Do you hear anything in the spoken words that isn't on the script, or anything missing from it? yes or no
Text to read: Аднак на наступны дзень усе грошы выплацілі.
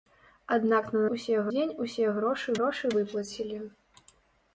yes